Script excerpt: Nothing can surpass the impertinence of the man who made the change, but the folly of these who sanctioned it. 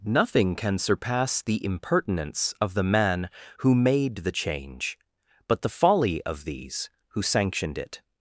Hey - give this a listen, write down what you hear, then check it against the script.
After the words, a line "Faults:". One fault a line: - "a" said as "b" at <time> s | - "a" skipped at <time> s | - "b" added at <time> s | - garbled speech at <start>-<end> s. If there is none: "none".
Nothing can surpass the impertinence of the man who made the change, but the folly of these who sanctioned it.
Faults:
none